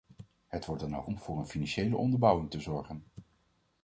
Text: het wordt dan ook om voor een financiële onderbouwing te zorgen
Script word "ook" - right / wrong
right